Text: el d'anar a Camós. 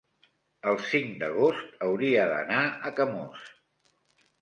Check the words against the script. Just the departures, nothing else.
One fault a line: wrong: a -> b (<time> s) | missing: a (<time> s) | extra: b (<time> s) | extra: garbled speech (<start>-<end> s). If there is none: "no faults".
extra: cinc d'agost hauria (0.9 s)